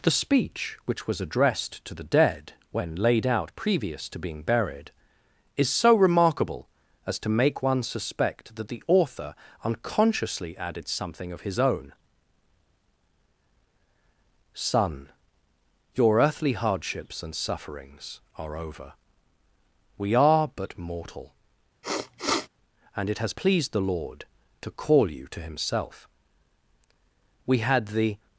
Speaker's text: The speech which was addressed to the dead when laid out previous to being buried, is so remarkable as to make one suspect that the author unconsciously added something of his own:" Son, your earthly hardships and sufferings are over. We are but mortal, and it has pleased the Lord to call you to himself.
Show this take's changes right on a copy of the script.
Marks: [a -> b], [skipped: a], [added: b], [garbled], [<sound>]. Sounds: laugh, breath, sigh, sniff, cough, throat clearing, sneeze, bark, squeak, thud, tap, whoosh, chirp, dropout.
The speech which was addressed to the dead when laid out previous to being buried, is so remarkable as to make one suspect that the author unconsciously added something of his own:" Son, your earthly hardships and sufferings are over. We are but mortal, [sniff] and it has pleased the Lord to call you to himself. [added: We had the]